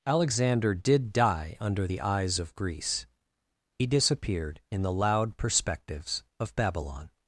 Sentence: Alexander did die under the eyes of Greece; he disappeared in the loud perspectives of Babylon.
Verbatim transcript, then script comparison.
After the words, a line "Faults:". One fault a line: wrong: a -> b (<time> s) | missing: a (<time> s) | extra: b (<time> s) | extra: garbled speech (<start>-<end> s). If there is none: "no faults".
Alexander did die under the eyes of Greece; he disappeared in the loud perspectives of Babylon.
Faults:
no faults